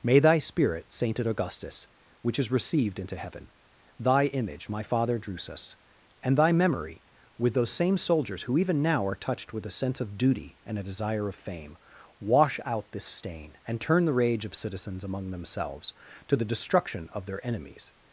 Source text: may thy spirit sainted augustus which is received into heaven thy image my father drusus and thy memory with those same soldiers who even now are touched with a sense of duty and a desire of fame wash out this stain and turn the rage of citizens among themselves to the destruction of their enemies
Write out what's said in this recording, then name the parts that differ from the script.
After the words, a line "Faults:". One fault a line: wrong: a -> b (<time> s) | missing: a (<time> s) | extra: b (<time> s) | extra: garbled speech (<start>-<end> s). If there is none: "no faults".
may thy spirit sainted augustus which is received into heaven thy image my father drusus and thy memory with those same soldiers who even now are touched with a sense of duty and a desire of fame wash out this stain and turn the rage of citizens among themselves to the destruction of their enemies
Faults:
no faults